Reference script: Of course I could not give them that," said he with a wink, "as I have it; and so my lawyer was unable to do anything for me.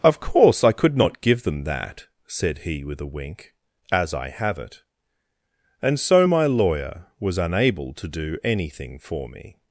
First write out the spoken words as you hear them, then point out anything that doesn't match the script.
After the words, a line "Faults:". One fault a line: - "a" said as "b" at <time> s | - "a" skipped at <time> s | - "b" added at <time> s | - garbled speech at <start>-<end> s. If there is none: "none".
Of course I could not give them that," said he with a wink, "as I have it; and so my lawyer was unable to do anything for me.
Faults:
none